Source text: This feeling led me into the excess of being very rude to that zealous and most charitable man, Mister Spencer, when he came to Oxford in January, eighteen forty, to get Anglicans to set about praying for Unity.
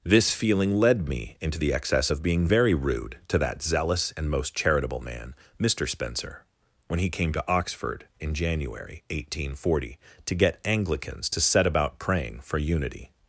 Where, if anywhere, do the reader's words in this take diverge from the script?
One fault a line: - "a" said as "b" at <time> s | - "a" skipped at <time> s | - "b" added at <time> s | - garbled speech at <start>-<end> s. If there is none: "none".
none